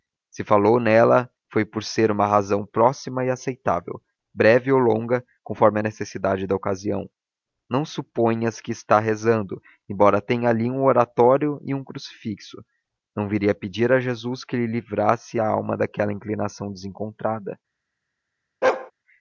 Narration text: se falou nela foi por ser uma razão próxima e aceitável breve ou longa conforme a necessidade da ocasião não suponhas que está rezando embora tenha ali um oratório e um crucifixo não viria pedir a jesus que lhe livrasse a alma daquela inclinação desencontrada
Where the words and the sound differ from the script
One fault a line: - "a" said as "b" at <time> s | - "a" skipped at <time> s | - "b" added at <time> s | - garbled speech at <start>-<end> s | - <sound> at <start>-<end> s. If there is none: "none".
- bark at 18.6-18.9 s